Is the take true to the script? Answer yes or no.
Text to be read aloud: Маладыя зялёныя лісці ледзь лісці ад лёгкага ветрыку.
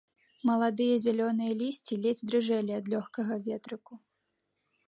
no